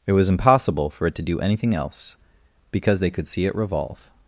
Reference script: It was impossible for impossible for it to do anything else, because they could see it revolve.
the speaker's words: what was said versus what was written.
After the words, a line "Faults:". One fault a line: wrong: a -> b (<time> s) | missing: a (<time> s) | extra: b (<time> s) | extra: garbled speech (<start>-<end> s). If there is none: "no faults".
It was impossible for it to do anything else, because they could see it revolve.
Faults:
missing: impossible for (1.1 s)